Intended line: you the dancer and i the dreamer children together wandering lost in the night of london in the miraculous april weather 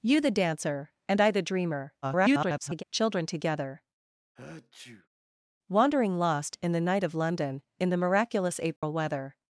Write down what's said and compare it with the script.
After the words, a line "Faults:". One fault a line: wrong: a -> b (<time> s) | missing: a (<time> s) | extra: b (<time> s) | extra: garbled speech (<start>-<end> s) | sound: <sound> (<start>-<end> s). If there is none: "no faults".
you the dancer and i the dreamer [garbled] children together wandering lost in the night of london in the miraculous april weather
Faults:
extra: garbled speech (2.0-2.8 s)
sound: sneeze (4.4-5.1 s)
sound: dropout (8.8-8.8 s)